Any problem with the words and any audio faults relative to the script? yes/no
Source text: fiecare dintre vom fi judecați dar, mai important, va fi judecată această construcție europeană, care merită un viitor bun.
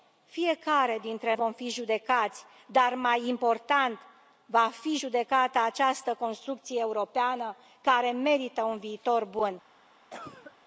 yes